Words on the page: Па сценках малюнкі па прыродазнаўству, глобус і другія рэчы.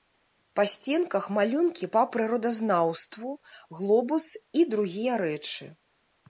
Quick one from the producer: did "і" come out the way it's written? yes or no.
yes